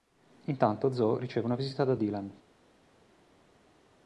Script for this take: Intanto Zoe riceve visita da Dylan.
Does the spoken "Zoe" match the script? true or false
true